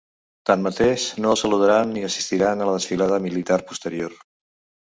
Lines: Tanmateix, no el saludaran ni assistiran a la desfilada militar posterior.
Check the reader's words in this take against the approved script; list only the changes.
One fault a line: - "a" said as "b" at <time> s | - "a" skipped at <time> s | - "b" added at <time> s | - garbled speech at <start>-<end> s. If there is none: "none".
none